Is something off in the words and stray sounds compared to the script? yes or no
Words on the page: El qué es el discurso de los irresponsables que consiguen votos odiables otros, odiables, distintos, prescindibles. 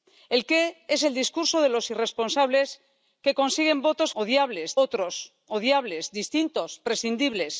no